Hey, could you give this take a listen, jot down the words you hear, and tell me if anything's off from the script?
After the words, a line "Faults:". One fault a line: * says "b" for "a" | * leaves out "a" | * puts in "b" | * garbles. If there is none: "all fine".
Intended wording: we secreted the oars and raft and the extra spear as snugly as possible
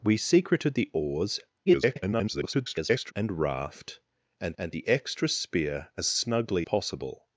we secreted the oars [garbled] and raft and and the extra spear as snugly possible
Faults:
* garbles
* puts in "and"
* leaves out "as"